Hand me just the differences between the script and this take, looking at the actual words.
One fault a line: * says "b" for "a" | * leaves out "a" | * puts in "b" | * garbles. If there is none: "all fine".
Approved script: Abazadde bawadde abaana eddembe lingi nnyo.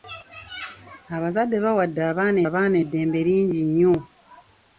* puts in "abaana"